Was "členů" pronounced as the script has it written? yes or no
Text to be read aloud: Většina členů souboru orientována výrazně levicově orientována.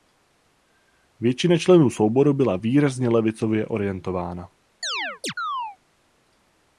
yes